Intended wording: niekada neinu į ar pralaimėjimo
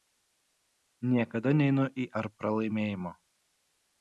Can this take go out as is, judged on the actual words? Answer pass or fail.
pass